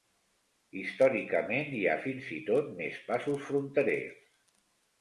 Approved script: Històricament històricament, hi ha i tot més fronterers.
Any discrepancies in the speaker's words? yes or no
yes